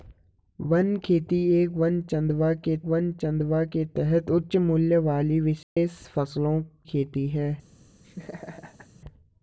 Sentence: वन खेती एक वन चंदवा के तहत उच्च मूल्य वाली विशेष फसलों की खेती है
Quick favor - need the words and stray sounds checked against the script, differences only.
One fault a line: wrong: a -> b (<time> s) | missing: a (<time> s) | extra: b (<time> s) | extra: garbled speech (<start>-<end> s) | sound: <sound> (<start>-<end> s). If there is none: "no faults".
extra: वन चंदवा के (2.8 s)
sound: dropout (5.6-5.8 s)
missing: की (6.6 s)
sound: laugh (8.0-8.9 s)